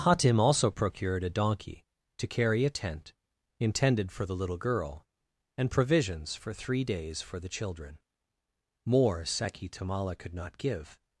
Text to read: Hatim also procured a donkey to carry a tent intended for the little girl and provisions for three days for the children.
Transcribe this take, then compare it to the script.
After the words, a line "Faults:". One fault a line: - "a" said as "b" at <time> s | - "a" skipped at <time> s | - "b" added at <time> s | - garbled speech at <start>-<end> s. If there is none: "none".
Hatim also procured a donkey to carry a tent intended for the little girl and provisions for three days for the children. More Seki Tamala could not give
Faults:
- "More Seki Tamala could not give" added at 8.8 s